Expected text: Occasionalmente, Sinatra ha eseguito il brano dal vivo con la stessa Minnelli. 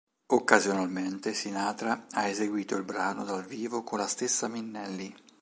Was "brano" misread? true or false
false